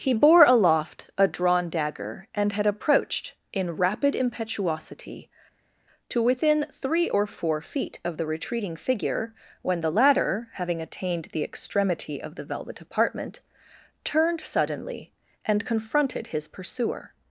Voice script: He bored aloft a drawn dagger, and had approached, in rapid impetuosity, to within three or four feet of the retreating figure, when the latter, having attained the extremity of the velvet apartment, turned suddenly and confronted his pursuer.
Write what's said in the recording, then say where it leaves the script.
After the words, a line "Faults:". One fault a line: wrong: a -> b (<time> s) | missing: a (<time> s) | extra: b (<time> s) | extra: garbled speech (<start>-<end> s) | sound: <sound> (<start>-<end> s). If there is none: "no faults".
He bore aloft a drawn dagger, and had approached, in rapid impetuosity, to within three or four feet of the retreating figure, when the latter, having attained the extremity of the velvet apartment, turned suddenly and confronted his pursuer.
Faults:
wrong: bored -> bore (0.1 s)